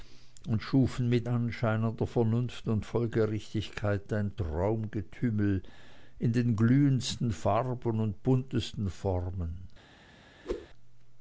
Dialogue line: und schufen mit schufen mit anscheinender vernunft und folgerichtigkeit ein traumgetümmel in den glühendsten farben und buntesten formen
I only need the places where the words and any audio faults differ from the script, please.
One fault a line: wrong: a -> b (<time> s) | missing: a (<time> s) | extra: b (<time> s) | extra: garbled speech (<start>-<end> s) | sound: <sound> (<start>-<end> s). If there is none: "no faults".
missing: schufen mit (1.3 s)
sound: whoosh (10.4-10.7 s)